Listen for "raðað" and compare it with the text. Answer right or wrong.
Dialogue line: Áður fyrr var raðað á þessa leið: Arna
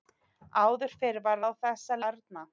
wrong